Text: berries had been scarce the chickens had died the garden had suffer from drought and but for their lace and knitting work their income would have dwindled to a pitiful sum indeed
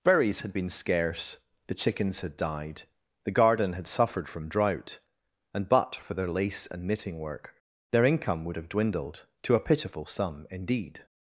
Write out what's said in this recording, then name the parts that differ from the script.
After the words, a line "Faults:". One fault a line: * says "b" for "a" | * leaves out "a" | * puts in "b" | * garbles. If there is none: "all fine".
berries had been scarce the chickens had died the garden had suffered from drought and but for their lace and knitting work their income would have dwindled to a pitiful sum indeed
Faults:
* says "suffered" for "suffer"